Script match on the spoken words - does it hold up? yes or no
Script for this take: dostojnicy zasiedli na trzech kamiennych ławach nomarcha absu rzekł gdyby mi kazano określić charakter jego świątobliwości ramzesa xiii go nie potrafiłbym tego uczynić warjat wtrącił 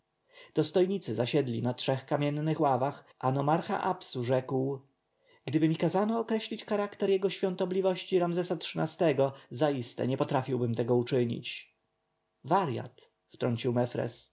no